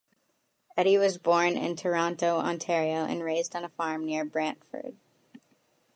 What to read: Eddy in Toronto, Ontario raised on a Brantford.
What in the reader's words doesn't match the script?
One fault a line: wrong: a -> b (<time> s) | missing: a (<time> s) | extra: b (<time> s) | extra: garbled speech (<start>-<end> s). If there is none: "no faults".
extra: was born (1.0 s)
extra: and (3.0 s)
extra: farm near (3.7 s)